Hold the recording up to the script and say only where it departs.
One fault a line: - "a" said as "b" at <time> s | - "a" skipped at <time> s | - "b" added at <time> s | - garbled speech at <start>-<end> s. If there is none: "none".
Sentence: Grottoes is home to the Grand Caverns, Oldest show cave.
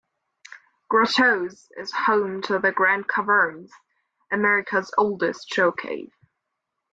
- "America's" added at 4.3 s